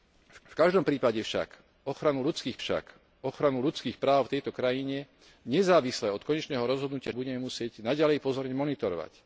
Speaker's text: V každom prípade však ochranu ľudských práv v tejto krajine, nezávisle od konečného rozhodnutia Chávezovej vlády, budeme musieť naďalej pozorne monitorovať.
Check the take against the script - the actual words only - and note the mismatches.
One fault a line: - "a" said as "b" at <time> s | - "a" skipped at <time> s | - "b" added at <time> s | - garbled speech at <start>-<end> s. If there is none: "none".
- "v" added at 0.4 s
- "však ochranu ľudských" added at 2.6 s
- "Chávezovej vlády" skipped at 7.2 s